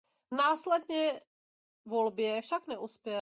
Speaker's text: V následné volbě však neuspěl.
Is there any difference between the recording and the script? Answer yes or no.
no